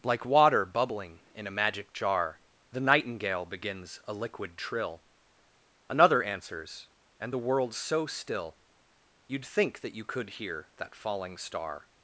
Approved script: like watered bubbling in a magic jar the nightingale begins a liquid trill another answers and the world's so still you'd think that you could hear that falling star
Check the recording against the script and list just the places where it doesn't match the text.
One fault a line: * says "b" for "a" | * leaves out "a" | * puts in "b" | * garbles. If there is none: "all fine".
* says "water" for "watered"